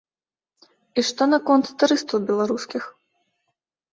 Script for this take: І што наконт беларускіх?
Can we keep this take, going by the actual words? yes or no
no